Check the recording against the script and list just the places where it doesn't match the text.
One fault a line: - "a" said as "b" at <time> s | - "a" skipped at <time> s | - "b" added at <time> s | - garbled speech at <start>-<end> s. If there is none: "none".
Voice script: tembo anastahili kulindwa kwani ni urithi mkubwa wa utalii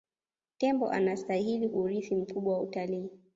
- "kulindwa kwani ni" skipped at 1.7 s